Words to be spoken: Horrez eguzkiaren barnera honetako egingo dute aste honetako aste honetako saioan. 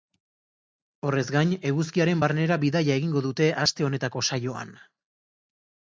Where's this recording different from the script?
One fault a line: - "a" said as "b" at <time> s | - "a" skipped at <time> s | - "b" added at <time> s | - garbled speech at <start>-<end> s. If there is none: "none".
- "gain" added at 1.4 s
- "honetako" said as "bidaia" at 2.7 s
- "aste honetako" skipped at 4.3 s